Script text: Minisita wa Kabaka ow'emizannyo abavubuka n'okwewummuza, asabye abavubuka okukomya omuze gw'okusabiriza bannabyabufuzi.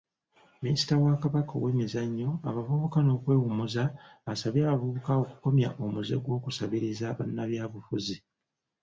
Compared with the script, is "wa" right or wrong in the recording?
right